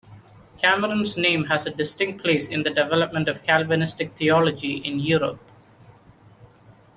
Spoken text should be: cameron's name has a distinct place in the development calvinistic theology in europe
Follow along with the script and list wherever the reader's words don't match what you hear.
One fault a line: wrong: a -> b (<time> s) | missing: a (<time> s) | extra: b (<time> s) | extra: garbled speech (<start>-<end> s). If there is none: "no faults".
extra: of (3.3 s)